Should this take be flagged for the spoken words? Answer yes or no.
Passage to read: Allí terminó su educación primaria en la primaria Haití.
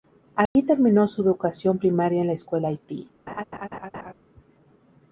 yes